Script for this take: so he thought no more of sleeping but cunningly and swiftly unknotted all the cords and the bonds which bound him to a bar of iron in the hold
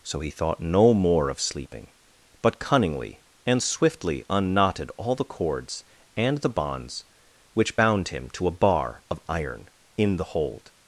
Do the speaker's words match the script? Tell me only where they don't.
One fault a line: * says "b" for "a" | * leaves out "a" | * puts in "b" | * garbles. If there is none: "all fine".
all fine